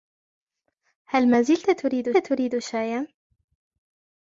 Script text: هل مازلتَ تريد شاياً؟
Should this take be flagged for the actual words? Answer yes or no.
yes